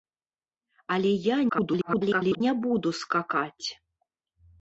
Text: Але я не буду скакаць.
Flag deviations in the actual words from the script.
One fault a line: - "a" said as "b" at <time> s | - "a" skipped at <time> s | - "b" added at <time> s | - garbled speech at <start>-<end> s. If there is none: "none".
- garbled speech at 1.5-2.4 s